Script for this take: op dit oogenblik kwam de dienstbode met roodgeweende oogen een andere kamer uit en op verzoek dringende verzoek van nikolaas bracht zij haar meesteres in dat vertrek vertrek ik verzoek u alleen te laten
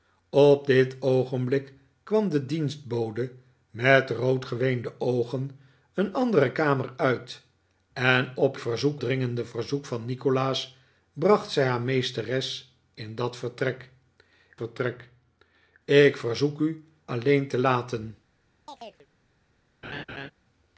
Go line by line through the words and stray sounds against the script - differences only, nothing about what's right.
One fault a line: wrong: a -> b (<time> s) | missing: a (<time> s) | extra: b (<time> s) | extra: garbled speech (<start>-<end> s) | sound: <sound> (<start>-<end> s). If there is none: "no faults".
sound: chirp (18.7-19.1 s)
sound: laugh (19.8-20.3 s)